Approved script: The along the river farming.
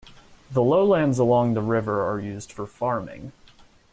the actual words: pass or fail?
fail